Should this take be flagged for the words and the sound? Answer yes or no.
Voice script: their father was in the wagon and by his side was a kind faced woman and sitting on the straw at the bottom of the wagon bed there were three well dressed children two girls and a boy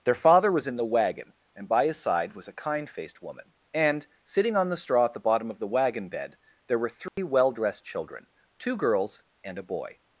yes